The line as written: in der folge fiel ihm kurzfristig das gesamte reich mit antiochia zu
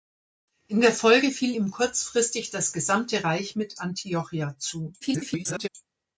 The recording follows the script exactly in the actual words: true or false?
false